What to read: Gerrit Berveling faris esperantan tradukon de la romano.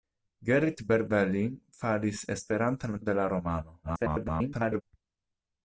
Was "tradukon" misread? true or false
true